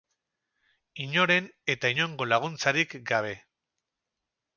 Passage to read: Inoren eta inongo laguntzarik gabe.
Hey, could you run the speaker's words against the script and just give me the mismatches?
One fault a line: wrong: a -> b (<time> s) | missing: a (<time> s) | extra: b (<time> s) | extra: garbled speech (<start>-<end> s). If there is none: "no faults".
no faults